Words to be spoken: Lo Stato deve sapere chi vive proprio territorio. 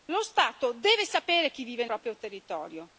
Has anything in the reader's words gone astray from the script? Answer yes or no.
no